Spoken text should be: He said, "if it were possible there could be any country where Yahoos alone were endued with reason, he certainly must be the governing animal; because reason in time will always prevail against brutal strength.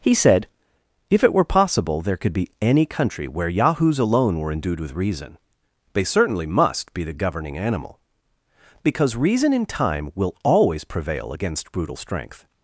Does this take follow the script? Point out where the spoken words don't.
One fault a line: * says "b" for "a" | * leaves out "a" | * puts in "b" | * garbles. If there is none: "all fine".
* says "they" for "he"